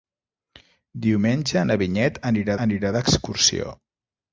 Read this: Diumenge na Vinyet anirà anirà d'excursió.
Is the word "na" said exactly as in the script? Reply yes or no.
yes